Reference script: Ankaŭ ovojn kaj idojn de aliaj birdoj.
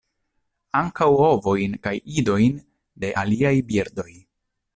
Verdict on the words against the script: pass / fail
pass